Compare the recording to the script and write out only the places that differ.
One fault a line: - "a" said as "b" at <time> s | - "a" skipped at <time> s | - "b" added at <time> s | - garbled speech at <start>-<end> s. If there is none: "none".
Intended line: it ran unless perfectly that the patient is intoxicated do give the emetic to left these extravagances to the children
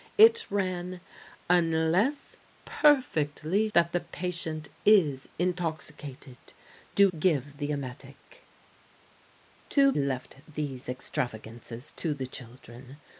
none